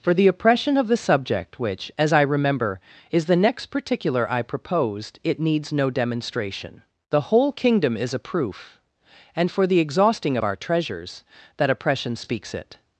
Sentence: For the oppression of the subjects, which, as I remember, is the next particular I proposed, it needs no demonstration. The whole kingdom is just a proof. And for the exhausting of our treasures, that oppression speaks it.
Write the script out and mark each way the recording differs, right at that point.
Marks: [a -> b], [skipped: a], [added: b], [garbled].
For the oppression of the [subjects, -> subject] which, as I remember, is the next particular I proposed, it needs no demonstration. The whole kingdom is [skipped: just] a proof. And for the exhausting of our treasures, that oppression speaks it.